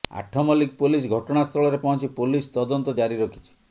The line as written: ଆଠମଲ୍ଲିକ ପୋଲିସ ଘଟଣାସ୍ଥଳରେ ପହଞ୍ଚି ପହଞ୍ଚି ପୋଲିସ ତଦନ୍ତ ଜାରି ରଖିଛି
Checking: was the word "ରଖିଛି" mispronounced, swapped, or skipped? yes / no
no